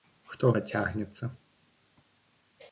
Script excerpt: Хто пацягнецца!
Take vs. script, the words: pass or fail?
pass